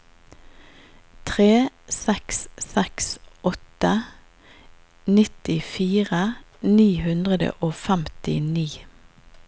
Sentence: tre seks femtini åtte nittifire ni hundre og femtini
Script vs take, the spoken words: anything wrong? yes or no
yes